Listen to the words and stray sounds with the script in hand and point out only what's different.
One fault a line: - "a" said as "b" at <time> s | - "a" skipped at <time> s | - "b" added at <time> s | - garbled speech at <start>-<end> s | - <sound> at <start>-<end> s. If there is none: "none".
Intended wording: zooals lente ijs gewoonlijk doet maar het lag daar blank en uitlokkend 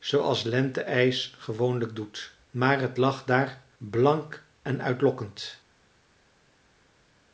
none